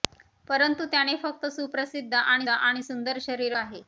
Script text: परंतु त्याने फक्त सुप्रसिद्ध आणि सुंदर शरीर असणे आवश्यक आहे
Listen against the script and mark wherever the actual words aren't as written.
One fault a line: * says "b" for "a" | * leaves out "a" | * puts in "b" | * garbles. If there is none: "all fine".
* puts in "आणि"
* leaves out "असणे आवश्यक"